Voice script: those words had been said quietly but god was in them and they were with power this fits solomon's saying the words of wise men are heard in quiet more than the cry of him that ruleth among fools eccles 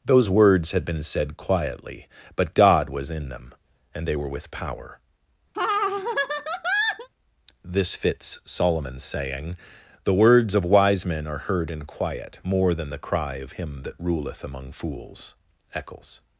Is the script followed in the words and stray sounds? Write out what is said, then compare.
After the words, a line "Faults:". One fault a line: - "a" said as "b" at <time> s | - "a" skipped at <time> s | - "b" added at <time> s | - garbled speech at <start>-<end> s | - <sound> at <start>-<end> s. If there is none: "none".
those words had been said quietly but god was in them and they were with power this fits solomon's saying the words of wise men are heard in quiet more than the cry of him that ruleth among fools eccles
Faults:
- laugh at 5.5-7.1 s